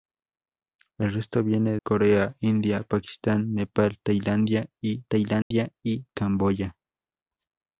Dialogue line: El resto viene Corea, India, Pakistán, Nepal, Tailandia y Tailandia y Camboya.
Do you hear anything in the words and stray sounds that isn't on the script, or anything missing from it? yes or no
yes